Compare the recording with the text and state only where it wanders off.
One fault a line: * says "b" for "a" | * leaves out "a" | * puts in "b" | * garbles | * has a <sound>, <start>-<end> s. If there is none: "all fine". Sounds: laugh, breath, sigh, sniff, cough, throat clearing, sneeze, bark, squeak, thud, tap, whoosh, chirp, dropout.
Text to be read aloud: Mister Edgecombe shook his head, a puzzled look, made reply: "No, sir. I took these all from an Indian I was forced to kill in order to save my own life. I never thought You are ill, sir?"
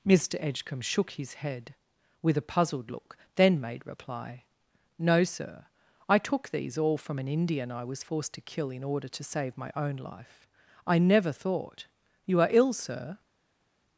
* puts in "with"
* puts in "then"